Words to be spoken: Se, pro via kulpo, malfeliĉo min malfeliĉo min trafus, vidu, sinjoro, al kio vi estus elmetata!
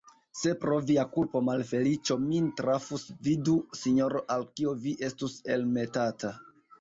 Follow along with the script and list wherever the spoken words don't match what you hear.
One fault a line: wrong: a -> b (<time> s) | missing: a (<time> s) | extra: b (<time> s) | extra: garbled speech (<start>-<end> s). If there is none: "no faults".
missing: malfeliĉo min (2.5 s)